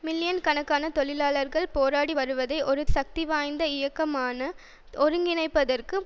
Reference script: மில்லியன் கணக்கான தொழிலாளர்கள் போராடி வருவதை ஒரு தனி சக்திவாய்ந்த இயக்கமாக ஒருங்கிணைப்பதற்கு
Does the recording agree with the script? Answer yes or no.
no